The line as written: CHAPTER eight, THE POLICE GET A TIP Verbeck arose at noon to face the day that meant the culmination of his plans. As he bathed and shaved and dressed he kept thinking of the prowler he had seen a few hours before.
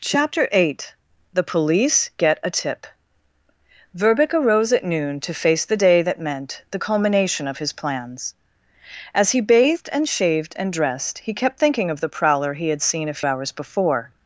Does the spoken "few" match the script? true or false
false